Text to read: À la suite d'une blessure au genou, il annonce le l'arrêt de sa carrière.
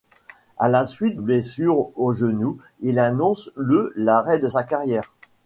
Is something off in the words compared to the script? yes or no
yes